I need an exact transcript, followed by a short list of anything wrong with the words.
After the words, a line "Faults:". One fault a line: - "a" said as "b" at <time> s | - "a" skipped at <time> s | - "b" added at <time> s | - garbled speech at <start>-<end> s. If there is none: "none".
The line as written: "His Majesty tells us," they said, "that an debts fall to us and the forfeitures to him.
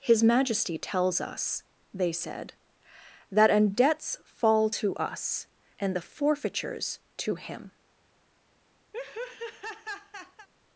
"His Majesty tells us," they said, "that an debts fall to us and the forfeitures to him.
Faults:
none